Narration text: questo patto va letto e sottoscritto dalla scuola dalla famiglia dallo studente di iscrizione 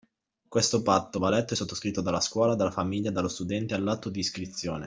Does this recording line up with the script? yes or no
no